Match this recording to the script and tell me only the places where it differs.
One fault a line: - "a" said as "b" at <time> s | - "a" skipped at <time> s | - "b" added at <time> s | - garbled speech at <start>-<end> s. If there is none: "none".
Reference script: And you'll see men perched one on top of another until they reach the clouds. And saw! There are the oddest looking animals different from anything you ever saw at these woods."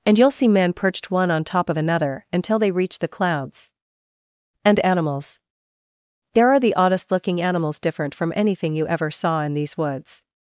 - "saw" said as "animals" at 4.8 s
- "at" said as "in" at 9.4 s